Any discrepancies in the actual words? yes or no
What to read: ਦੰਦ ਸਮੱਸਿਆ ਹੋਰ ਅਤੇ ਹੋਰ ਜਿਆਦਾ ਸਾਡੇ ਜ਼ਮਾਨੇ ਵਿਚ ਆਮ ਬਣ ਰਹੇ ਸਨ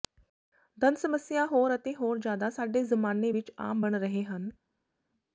yes